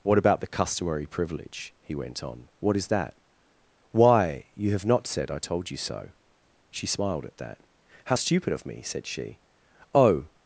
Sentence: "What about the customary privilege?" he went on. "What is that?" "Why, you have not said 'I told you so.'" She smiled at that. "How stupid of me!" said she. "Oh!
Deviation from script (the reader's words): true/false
false